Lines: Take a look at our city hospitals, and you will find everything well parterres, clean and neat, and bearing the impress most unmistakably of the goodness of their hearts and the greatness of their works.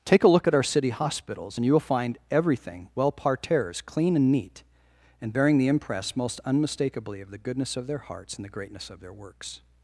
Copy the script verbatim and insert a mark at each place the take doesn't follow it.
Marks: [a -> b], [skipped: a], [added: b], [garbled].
Take a look at our city hospitals, and you will find everything well parterres, clean and neat, and bearing the impress most unmistakably of the goodness of their hearts and the greatness of their works.